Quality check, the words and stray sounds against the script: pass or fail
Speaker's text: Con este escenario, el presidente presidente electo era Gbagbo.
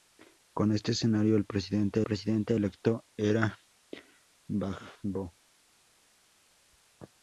pass